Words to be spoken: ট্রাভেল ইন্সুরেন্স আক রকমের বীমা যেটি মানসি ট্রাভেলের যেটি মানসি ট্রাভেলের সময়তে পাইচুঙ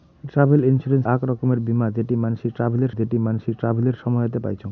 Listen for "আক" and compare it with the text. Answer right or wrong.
right